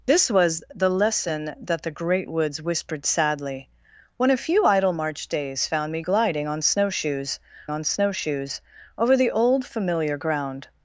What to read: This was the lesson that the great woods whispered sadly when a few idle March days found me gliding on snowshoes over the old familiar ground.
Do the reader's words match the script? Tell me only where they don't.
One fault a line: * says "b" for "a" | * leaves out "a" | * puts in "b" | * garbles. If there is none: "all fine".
* puts in "on snowshoes"